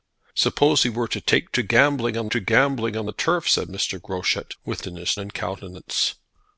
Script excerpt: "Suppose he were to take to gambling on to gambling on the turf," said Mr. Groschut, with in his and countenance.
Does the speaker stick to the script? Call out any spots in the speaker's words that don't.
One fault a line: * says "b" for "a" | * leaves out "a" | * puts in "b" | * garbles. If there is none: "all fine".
all fine